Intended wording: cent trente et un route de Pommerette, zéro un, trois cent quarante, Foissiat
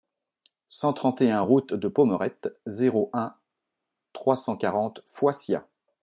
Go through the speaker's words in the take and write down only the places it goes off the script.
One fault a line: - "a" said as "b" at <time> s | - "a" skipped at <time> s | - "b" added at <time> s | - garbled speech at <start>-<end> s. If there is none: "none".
none